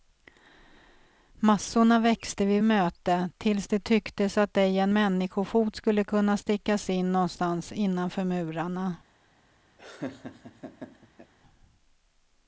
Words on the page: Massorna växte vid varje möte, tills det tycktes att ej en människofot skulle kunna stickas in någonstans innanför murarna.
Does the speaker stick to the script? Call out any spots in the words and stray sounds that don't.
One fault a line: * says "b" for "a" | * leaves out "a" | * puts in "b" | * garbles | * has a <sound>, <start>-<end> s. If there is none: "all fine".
* leaves out "varje"
* has a laugh, 9.8-11.3 s